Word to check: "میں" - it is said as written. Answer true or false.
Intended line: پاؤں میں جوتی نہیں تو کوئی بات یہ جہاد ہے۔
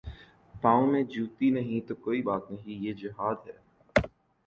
true